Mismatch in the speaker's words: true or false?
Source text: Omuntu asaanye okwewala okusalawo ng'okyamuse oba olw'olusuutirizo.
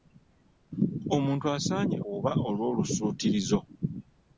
true